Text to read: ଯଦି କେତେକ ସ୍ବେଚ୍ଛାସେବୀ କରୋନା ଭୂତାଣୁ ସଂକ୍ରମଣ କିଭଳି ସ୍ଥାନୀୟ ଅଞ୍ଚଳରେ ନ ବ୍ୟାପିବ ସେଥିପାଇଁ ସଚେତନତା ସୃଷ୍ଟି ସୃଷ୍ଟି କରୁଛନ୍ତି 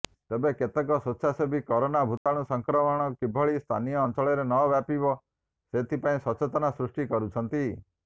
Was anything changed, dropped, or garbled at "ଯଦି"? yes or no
yes